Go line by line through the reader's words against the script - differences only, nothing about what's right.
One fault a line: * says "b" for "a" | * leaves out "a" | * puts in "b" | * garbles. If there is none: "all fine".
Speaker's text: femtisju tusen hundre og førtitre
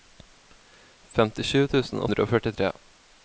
all fine